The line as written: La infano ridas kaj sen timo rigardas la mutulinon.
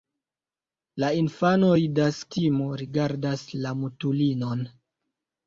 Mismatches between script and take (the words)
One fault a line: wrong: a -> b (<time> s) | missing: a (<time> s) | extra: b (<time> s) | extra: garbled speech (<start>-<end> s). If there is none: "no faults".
missing: kaj sen (2.2 s)